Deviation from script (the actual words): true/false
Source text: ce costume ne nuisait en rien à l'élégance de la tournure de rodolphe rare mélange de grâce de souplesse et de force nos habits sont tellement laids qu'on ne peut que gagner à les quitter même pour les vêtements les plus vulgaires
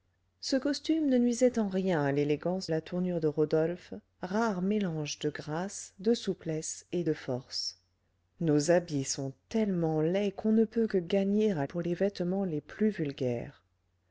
true